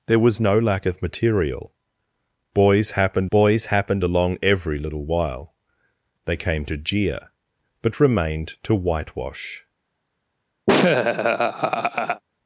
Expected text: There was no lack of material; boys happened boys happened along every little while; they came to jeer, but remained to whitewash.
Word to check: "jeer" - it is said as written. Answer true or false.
true